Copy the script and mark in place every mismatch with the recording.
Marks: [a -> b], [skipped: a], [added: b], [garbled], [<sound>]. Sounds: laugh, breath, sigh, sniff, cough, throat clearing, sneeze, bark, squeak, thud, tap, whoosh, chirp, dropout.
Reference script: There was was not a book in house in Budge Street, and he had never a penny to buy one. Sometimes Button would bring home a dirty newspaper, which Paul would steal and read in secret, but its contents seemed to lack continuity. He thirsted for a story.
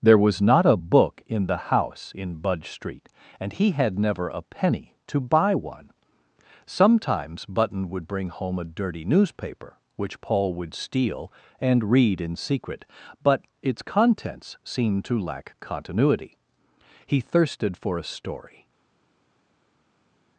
There was [skipped: was] not a book in [added: the] house in Budge Street, and he had never a penny to buy one. Sometimes Button would bring home a dirty newspaper, which Paul would steal and read in secret, but its contents seemed to lack continuity. He thirsted for a story.